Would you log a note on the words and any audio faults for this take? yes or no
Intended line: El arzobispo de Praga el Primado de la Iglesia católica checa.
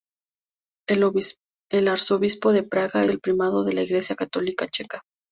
no